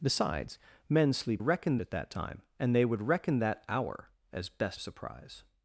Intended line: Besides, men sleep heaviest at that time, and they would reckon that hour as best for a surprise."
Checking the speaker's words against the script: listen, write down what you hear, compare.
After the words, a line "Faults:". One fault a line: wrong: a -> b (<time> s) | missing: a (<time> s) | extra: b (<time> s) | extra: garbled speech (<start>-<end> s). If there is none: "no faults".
Besides, men sleep reckon at that time, and they would reckon that hour as best a surprise."
Faults:
wrong: heaviest -> reckon (1.4 s)
missing: for (4.8 s)